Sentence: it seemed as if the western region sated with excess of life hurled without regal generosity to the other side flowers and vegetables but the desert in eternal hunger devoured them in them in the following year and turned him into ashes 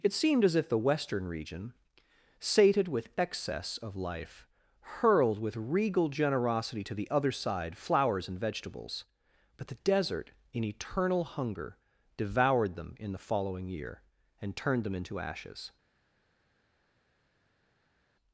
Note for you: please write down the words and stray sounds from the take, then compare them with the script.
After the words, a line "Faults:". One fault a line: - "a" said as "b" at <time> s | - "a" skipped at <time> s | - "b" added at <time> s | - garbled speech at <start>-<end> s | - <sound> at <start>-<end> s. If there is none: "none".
it seemed as if the western region sated with excess of life hurled with regal generosity to the other side flowers and vegetables but the desert in eternal hunger devoured them in the following year and turned them into ashes
Faults:
- "without" said as "with" at 5.4 s
- "them in" skipped at 13.1 s
- "him" said as "them" at 14.8 s